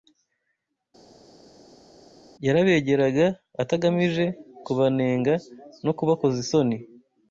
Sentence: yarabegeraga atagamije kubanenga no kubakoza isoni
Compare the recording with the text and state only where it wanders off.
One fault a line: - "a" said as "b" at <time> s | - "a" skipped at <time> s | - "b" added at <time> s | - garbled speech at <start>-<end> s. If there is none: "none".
none